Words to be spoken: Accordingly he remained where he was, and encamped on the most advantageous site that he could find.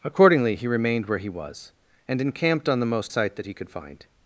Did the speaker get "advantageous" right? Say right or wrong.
wrong